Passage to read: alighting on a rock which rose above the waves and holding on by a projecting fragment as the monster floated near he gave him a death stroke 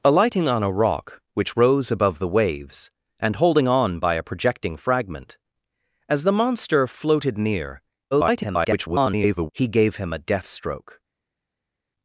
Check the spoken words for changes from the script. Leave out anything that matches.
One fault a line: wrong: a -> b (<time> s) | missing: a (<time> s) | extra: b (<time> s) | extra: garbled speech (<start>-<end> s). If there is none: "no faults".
extra: garbled speech (8.1-9.5 s)